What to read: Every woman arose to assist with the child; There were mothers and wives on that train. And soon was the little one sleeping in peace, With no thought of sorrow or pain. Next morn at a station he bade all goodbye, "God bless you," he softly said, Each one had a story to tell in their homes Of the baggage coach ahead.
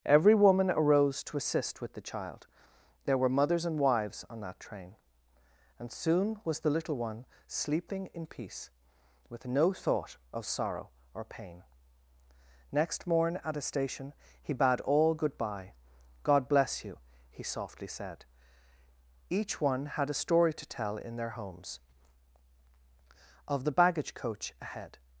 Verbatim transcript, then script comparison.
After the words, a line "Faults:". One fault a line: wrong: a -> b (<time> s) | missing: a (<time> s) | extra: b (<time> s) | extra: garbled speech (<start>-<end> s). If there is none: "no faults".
Every woman arose to assist with the child; There were mothers and wives on that train. And soon was the little one sleeping in peace, With no thought of sorrow or pain. Next morn at a station he bade all goodbye, "God bless you," he softly said, Each one had a story to tell in their homes Of the baggage coach ahead.
Faults:
no faults